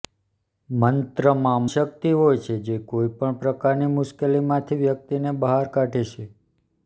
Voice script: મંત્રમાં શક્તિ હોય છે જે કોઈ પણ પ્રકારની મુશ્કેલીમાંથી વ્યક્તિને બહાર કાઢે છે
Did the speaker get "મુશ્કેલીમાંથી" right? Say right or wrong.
right